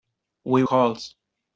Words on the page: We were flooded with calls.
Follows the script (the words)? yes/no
no